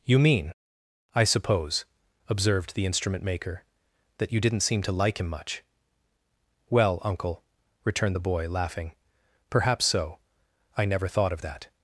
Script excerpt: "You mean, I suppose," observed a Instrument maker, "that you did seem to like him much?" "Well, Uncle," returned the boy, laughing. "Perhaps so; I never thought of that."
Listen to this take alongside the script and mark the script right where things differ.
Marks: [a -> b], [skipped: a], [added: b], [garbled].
"You mean, I suppose," observed [a -> the] Instrument maker, "that you [did -> didn't] seem to like him much?" "Well, Uncle," returned the boy, laughing. "Perhaps so; I never thought of that."